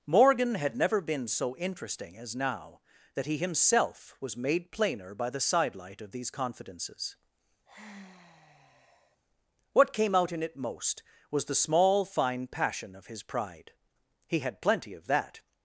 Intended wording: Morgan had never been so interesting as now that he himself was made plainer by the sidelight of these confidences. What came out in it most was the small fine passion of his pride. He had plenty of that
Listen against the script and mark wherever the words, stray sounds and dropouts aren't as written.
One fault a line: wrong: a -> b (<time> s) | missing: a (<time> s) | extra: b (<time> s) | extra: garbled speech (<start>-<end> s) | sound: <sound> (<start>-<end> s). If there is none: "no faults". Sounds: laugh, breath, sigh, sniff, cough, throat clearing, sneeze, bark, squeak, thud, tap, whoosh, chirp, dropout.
sound: sigh (7.7-9.2 s)